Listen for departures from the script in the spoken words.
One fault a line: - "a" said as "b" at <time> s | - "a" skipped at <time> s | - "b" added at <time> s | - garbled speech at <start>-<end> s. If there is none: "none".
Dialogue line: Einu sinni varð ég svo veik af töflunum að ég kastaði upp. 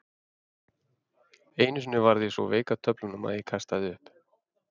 none